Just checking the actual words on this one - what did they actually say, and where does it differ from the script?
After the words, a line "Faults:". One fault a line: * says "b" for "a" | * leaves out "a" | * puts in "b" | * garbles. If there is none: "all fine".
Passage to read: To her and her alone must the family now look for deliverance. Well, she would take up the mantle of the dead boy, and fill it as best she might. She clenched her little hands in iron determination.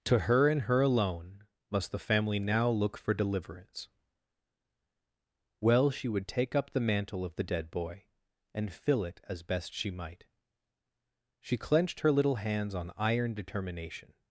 To her and her alone must the family now look for deliverance. Well, she would take up the mantle of the dead boy, and fill it as best she might. She clenched her little hands on iron determination.
Faults:
* says "on" for "in"